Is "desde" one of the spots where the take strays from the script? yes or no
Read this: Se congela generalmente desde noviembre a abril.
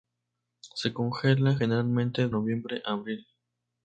yes